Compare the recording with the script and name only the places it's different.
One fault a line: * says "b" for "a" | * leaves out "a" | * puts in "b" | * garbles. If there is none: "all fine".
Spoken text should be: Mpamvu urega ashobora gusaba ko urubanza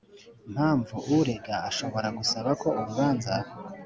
all fine